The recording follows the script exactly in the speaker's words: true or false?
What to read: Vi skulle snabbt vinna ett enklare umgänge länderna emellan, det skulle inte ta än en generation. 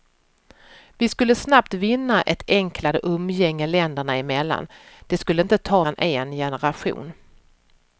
true